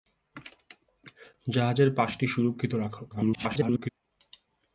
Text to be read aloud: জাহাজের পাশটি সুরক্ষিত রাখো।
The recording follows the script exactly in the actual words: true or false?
false